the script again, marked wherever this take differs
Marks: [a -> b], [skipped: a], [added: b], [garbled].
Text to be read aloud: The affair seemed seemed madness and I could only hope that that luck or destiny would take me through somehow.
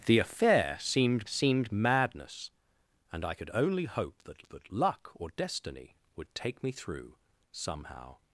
The affair seemed seemed madness and I could only hope that that luck or destiny would take me through somehow.